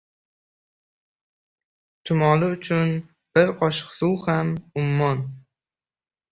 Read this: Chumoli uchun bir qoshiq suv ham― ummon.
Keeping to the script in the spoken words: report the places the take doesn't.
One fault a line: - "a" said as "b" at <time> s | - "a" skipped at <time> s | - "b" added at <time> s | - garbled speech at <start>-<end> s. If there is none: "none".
none